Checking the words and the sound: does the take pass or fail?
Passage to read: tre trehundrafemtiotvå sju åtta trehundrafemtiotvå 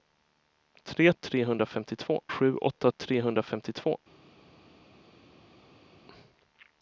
pass